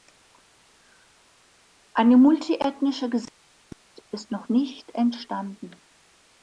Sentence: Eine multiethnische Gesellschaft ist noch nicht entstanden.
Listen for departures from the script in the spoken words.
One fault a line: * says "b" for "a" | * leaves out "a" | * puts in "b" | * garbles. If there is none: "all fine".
all fine